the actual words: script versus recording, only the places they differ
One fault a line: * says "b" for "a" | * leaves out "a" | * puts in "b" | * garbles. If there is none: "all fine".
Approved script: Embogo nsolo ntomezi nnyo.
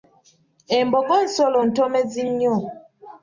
all fine